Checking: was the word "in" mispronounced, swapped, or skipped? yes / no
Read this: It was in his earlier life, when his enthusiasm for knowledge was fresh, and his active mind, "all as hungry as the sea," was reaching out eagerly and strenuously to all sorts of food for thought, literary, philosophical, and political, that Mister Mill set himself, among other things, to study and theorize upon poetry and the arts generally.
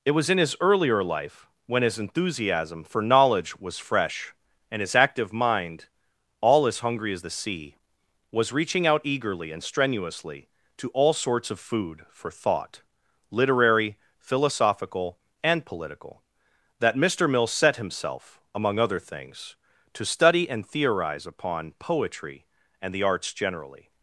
no